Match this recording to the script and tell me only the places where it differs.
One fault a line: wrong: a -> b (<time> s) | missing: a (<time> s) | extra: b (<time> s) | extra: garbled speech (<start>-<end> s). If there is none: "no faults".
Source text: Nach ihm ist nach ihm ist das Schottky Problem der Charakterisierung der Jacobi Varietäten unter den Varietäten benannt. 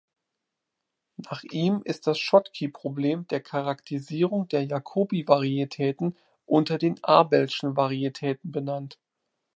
missing: nach ihm ist (2.1 s)
extra: abelschen (7.0 s)